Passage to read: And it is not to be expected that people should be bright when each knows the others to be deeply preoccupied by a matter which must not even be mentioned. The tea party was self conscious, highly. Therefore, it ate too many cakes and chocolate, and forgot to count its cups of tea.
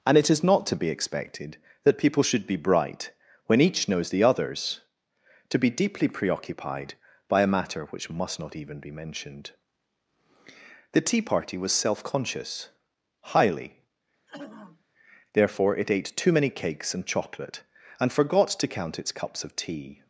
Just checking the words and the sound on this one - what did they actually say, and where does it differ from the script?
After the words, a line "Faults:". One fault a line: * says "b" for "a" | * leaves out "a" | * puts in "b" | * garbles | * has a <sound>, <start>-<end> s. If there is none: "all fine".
And it is not to be expected that people should be bright when each knows the others to be deeply preoccupied by a matter which must not even be mentioned. The tea party was self conscious, highly. Therefore, it ate too many cakes and chocolate, and forgot to count its cups of tea.
Faults:
* has a throat clearing, 14.3-14.8 s